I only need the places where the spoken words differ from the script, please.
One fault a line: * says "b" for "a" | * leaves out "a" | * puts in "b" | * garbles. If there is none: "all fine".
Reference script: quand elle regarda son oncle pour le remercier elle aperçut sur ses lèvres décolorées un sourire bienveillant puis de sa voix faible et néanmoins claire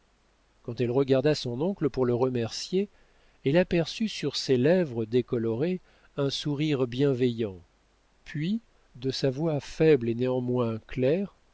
all fine